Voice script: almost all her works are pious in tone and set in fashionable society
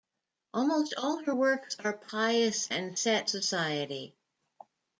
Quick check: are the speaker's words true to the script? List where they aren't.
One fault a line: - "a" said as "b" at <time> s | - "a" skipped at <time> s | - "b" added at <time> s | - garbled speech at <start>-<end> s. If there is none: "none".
- "in tone" skipped at 2.7 s
- "in fashionable" skipped at 3.3 s